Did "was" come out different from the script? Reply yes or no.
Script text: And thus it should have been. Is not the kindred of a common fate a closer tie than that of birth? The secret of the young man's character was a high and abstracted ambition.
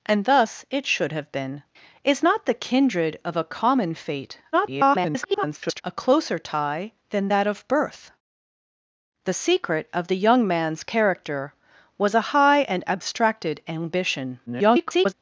no